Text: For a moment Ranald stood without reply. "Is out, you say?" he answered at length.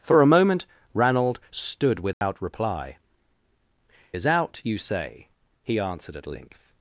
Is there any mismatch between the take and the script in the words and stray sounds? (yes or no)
yes